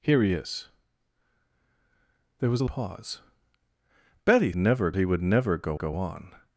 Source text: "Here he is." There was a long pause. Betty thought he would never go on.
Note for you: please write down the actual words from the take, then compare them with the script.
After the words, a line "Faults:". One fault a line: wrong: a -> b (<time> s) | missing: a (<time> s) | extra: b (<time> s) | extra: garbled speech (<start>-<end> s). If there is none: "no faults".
"Here he is." There was a pause. Betty never he would never go go on.
Faults:
missing: long (2.6 s)
wrong: thought -> never (4.5 s)
extra: go (5.7 s)